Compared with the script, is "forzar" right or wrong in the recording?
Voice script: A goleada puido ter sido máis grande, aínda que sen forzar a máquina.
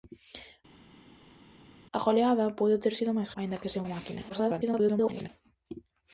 wrong